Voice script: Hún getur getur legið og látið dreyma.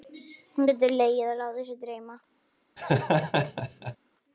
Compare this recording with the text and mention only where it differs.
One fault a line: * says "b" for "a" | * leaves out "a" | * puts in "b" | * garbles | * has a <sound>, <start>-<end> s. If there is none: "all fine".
* leaves out "getur"
* puts in "sig"
* has a laugh, 2.8-4.0 s